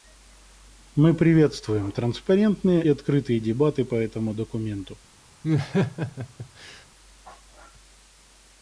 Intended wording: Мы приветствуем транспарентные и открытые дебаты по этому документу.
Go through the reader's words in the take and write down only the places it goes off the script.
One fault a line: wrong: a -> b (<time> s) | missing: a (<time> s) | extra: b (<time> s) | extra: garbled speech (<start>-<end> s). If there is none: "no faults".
missing: и (2.8 s)